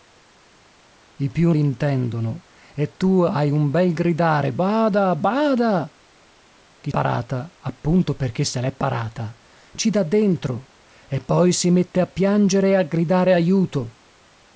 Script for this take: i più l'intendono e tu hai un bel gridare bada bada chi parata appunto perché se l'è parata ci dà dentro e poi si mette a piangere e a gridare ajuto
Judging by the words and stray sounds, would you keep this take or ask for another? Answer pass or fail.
pass